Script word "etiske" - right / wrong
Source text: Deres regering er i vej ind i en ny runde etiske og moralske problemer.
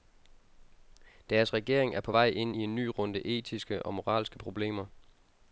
right